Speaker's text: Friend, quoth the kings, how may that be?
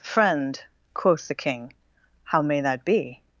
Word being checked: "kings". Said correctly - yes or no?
no